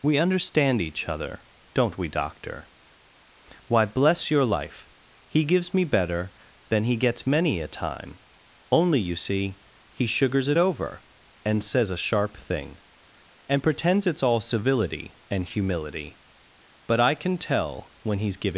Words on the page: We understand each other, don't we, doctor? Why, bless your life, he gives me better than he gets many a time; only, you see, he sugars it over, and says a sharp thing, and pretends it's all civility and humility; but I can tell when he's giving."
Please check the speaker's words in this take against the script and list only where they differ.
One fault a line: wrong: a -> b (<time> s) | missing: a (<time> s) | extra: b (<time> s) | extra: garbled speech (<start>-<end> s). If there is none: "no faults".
no faults